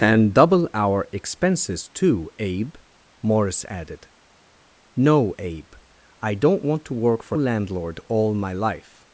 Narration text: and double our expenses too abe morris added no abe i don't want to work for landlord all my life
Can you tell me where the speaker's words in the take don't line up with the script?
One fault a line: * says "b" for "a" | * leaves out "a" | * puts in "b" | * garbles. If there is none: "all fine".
all fine